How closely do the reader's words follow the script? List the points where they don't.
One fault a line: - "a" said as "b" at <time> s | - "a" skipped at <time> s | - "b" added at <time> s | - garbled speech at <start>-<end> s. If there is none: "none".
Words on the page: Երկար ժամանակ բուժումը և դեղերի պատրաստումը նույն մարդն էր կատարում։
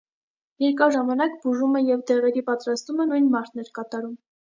none